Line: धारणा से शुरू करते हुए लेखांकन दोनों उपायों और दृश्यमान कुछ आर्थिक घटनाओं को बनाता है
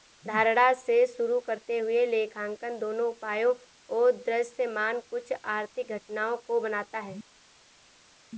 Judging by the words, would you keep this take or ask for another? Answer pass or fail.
pass